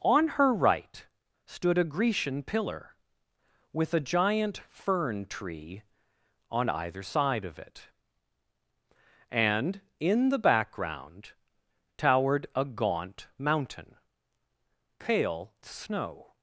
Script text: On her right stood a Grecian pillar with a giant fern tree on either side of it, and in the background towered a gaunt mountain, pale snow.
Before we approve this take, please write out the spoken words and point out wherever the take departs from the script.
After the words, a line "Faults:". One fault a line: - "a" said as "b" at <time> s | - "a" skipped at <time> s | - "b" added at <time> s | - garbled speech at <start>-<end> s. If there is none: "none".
On her right stood a Grecian pillar with a giant fern tree on either side of it, and in the background towered a gaunt mountain, pale snow.
Faults:
none